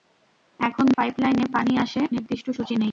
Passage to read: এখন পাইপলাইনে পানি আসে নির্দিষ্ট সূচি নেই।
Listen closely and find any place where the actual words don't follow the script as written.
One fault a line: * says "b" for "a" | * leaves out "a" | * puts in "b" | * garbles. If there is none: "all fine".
all fine